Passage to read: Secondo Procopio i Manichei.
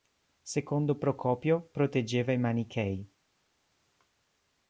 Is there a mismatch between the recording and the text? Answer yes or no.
yes